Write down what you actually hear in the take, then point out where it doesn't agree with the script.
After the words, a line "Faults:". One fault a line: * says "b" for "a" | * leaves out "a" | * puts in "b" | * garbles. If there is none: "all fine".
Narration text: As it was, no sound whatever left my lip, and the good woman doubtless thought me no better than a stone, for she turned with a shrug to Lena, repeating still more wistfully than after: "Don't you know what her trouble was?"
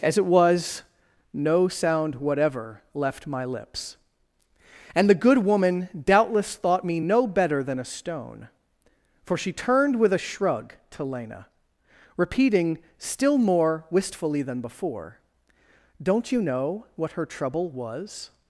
As it was, no sound whatever left my lips, and the good woman doubtless thought me no better than a stone, for she turned with a shrug to Lena, repeating still more wistfully than before: "Don't you know what her trouble was?"
Faults:
* says "lips" for "lip"
* says "before" for "after"